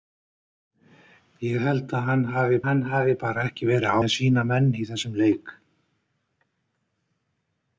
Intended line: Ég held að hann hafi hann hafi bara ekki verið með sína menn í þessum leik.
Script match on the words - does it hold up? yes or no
yes